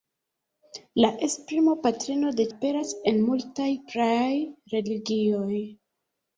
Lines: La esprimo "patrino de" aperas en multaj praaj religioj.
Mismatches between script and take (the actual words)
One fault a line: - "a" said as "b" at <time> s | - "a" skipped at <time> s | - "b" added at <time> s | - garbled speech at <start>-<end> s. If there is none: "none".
none